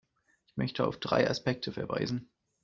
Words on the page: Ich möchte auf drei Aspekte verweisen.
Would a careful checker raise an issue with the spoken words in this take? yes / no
no